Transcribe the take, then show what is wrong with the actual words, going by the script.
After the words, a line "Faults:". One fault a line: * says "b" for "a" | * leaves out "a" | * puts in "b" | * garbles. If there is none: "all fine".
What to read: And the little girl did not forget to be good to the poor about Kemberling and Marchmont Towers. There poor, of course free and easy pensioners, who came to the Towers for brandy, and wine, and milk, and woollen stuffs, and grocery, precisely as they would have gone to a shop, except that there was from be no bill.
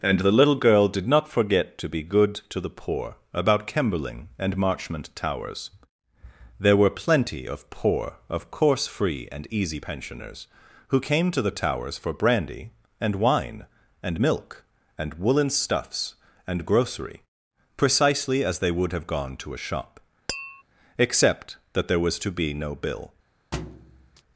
And the little girl did not forget to be good to the poor about Kemberling and Marchmont Towers. There were plenty of poor, of course free and easy pensioners, who came to the Towers for brandy, and wine, and milk, and woollen stuffs, and grocery, precisely as they would have gone to a shop, except that there was to be no bill.
Faults:
* puts in "were plenty of"
* says "to" for "from"